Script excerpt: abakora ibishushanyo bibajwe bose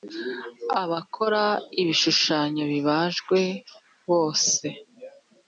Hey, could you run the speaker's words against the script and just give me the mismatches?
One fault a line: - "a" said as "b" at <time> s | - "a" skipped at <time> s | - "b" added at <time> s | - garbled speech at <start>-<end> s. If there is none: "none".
none